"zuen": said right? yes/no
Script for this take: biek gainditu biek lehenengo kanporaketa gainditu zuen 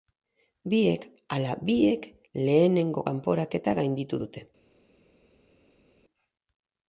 no